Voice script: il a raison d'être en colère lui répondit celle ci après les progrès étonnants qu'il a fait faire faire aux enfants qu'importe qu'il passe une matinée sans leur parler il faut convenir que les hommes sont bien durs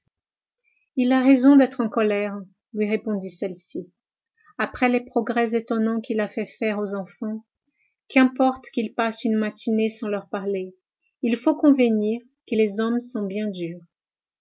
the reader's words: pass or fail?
fail